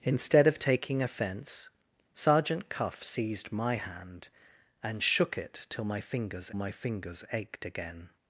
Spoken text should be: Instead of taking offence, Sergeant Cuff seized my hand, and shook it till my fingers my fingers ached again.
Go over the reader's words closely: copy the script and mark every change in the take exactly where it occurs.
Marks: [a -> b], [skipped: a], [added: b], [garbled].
Instead of taking offence, Sergeant Cuff seized my hand, and shook it till my fingers my fingers ached again.